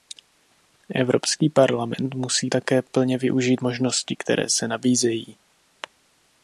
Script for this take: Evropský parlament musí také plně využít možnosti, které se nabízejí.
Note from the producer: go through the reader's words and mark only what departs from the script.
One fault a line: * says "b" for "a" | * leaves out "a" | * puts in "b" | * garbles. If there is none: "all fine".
all fine